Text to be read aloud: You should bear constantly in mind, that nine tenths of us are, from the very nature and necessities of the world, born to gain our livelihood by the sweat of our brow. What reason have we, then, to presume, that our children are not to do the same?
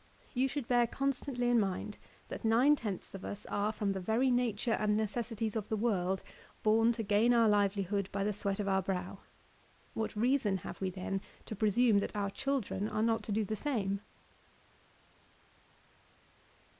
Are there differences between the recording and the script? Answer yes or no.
no